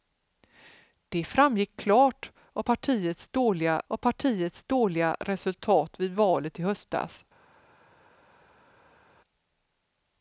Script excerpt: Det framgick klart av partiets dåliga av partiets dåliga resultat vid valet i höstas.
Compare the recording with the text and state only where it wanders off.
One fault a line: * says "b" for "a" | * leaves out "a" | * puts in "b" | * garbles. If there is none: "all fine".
all fine